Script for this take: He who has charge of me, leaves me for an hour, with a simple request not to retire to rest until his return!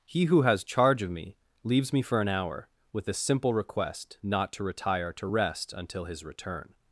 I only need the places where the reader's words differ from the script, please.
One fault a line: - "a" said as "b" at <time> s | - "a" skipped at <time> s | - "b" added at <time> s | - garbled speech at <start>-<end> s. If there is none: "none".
none